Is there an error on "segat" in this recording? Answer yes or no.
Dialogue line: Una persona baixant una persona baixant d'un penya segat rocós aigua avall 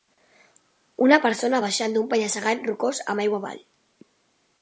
no